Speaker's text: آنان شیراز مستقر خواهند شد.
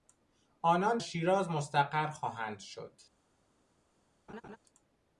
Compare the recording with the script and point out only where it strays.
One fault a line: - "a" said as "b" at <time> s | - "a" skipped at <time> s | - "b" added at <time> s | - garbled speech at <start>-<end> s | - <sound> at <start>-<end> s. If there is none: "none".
- laugh at 4.3-4.6 s